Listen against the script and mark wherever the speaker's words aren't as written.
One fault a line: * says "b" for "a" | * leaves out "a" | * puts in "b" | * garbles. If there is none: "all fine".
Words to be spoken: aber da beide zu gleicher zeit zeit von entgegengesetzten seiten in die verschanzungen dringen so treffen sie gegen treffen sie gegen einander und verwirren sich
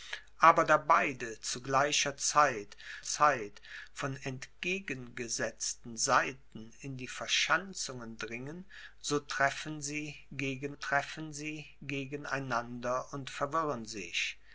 all fine